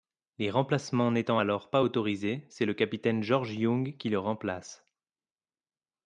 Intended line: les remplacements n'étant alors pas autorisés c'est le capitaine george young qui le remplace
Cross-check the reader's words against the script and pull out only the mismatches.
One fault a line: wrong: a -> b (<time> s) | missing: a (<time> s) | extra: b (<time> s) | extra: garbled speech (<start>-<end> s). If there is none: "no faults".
no faults